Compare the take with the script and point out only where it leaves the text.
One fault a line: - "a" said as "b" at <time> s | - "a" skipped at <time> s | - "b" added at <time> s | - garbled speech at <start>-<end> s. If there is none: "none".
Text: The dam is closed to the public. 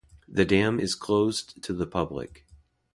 none